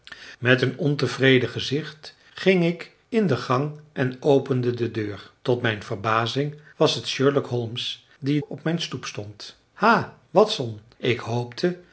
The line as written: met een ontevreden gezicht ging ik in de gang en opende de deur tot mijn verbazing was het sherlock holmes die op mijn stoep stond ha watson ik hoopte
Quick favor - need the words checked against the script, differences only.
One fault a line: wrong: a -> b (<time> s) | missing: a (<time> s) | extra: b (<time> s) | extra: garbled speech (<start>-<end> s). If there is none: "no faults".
no faults